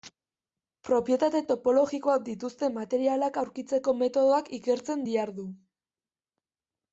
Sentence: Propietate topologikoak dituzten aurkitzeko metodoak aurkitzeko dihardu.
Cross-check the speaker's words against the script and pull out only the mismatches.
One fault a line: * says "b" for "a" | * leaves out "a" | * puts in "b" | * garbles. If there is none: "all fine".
* puts in "materialak"
* says "ikertzen" for "aurkitzeko"